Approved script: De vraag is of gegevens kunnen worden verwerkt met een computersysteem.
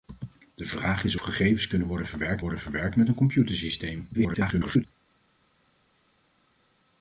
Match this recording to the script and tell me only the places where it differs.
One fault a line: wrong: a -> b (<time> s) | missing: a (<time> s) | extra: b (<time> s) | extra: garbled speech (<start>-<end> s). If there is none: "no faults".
missing: of (1.1 s)
extra: worden verwerkt (2.4 s)
extra: garbled speech (4.1-4.8 s)